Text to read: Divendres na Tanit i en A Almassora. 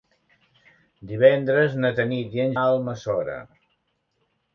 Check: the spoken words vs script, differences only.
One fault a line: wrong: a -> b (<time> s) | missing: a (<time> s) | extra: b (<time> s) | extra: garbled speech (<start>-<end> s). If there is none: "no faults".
no faults